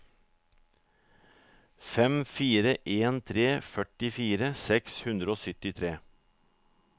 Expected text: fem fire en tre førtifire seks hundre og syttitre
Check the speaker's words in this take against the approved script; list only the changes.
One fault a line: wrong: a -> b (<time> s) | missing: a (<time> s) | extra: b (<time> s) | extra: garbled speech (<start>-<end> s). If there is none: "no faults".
no faults